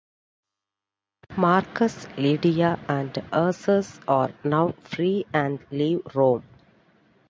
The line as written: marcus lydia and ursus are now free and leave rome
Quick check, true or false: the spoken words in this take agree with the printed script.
true